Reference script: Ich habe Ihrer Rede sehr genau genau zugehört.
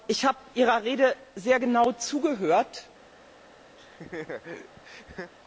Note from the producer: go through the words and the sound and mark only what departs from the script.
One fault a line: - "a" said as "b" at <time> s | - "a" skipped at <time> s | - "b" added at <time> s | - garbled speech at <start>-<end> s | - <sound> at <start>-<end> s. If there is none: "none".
- "genau" skipped at 1.9 s
- laugh at 3.8-5.3 s